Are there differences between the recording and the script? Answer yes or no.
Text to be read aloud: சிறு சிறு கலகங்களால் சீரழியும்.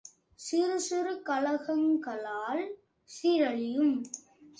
no